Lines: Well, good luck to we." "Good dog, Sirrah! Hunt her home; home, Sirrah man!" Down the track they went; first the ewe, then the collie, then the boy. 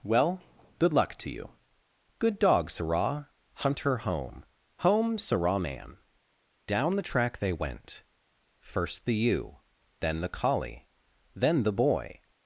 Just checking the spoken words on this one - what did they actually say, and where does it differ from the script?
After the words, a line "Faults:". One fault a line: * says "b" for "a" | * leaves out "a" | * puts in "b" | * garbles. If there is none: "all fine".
Well, good luck to you." "Good dog, Sirrah! Hunt her home; home, Sirrah man!" Down the track they went; first the ewe, then the collie, then the boy.
Faults:
* says "you" for "we"